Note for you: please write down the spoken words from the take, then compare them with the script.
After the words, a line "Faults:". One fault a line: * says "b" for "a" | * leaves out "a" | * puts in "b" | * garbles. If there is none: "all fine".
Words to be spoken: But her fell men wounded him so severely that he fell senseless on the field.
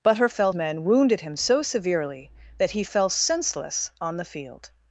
But her fell men wounded him so severely that he fell senseless on the field.
Faults:
all fine